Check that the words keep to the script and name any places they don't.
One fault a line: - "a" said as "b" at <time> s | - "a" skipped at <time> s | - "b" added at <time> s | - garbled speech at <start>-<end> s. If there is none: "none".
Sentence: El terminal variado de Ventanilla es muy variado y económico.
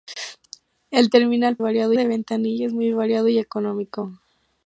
none